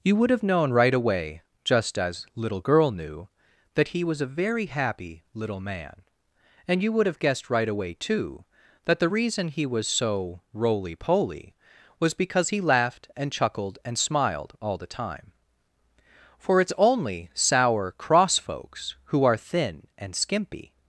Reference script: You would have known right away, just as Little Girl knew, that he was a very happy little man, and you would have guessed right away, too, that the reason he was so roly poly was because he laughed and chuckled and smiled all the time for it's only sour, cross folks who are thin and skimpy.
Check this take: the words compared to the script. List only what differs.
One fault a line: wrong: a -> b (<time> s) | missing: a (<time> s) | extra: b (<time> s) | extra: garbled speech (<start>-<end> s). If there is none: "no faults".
no faults